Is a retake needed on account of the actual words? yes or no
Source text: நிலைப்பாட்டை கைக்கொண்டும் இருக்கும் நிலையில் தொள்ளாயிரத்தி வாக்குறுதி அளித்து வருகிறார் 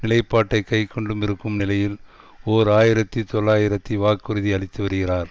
yes